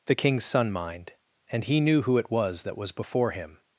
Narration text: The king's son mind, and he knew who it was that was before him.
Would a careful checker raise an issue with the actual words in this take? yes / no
no